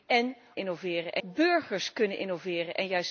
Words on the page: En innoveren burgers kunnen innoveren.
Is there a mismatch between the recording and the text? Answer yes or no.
no